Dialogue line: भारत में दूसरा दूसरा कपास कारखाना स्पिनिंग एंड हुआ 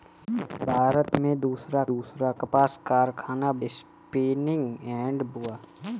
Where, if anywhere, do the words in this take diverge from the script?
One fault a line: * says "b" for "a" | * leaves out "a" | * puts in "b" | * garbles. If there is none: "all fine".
all fine